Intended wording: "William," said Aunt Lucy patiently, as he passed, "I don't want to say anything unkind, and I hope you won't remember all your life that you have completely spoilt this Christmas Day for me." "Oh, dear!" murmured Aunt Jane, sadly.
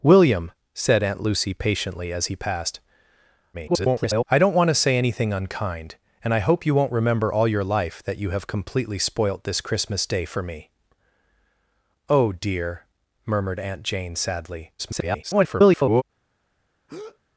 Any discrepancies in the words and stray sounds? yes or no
yes